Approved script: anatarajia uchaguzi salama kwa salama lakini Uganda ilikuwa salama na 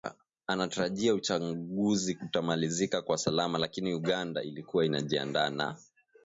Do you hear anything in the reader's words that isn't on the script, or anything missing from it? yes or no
yes